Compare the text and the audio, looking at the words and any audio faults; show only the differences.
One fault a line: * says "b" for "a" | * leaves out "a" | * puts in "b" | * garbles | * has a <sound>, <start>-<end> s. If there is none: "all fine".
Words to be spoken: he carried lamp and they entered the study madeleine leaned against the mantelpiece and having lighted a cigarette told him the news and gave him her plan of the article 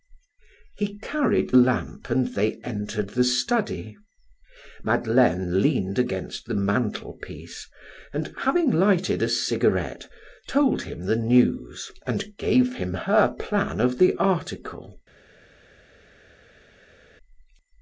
all fine